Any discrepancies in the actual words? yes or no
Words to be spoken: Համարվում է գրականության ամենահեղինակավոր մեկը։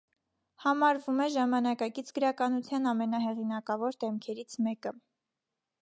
yes